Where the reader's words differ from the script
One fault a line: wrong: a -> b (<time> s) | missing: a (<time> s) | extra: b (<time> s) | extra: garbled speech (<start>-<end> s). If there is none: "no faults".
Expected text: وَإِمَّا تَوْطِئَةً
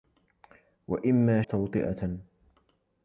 no faults